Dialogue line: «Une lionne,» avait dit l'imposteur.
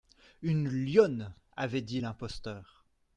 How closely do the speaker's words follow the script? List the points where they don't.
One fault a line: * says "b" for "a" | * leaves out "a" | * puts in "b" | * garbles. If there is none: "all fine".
all fine